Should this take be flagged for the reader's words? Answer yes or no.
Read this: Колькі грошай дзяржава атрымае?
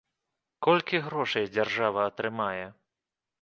no